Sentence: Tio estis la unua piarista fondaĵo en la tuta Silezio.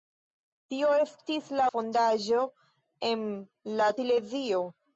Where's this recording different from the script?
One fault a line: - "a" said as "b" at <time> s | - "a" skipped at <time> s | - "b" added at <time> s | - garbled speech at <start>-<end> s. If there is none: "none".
- "unua piarista" skipped at 1.7 s
- "tuta" skipped at 3.9 s